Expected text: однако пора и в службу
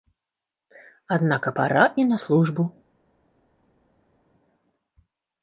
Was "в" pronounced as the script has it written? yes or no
no